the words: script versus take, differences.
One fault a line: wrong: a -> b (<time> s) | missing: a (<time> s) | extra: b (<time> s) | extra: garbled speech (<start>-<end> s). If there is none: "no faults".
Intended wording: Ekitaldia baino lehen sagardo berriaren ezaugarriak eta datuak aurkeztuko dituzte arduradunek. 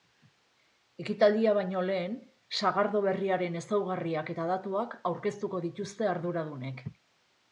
no faults